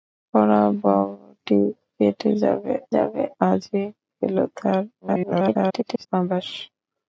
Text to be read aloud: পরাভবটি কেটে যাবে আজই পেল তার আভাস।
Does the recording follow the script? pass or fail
fail